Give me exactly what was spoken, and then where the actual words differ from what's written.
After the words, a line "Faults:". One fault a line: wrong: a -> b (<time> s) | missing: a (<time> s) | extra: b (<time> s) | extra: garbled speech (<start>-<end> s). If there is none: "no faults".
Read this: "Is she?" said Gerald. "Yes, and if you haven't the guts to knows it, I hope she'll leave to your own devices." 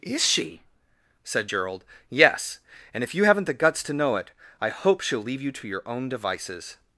"Is she?" said Gerald. "Yes, and if you haven't the guts to know it, I hope she'll leave you to your own devices."
Faults:
wrong: knows -> know (3.9 s)
extra: you (5.4 s)